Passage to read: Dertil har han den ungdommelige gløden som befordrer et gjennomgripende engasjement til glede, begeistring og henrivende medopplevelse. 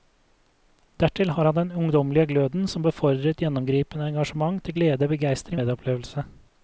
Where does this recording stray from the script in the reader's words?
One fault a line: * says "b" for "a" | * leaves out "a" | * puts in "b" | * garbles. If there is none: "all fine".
* leaves out "og henrivende"